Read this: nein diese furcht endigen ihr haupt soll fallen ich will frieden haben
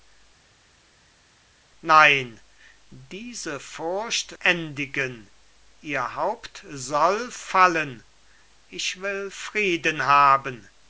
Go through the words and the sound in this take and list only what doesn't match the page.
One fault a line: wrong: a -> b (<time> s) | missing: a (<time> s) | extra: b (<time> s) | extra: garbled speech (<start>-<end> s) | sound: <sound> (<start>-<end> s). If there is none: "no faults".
no faults